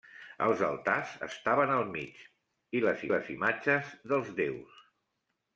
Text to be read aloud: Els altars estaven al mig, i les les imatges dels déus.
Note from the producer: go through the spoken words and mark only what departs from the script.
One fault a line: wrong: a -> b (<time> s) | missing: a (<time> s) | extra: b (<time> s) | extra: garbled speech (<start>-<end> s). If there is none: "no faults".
no faults